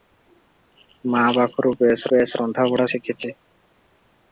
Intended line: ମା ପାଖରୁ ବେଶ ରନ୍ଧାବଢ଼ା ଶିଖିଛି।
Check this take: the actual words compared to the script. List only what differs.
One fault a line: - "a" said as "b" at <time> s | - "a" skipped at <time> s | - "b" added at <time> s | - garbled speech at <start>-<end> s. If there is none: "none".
- "ବେଶ" added at 2.1 s